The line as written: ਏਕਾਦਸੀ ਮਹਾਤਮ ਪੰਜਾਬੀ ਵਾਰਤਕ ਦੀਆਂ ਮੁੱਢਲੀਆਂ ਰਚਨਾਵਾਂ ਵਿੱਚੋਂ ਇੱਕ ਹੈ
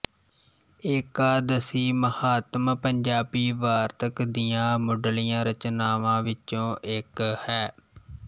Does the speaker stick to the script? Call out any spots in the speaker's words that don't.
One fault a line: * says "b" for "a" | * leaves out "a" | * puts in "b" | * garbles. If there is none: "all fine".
all fine